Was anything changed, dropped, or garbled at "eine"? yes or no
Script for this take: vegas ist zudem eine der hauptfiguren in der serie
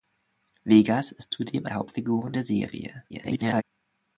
yes